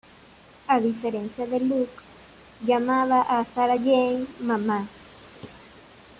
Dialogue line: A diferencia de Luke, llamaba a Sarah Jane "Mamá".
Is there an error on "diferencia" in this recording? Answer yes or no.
no